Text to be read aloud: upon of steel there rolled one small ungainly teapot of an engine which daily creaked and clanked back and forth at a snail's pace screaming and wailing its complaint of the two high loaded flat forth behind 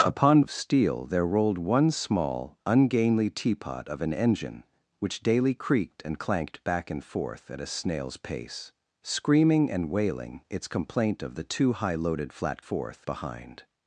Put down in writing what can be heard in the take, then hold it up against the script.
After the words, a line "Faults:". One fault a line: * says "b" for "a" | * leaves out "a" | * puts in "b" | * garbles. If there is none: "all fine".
upon of steel there rolled one small ungainly teapot of an engine which daily creaked and clanked back and forth at a snail's pace screaming and wailing its complaint of the two high loaded flat forth behind
Faults:
all fine